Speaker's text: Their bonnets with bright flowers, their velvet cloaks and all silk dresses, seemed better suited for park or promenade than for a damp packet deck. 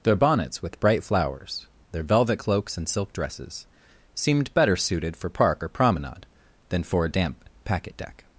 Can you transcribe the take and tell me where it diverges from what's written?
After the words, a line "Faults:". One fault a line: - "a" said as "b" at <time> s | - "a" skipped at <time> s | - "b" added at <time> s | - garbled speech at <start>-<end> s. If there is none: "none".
Their bonnets with bright flowers, their velvet cloaks and silk dresses, seemed better suited for park or promenade than for a damp packet deck.
Faults:
- "all" skipped at 2.9 s